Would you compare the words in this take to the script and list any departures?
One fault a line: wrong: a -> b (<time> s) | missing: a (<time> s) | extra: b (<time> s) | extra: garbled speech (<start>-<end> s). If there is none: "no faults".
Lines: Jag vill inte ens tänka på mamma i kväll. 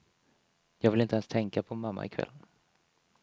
no faults